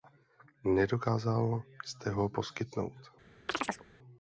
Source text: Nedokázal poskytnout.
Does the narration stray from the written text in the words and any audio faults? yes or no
yes